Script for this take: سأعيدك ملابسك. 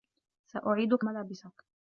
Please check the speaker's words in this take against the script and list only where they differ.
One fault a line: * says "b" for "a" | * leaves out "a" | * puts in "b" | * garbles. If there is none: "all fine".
all fine